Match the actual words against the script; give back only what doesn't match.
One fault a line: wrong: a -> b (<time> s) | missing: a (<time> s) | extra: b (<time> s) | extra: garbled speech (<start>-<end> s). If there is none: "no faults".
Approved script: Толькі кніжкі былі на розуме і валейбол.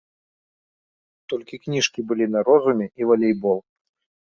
no faults